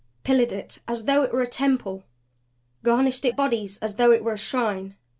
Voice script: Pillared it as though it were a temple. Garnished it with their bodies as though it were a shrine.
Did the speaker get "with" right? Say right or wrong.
wrong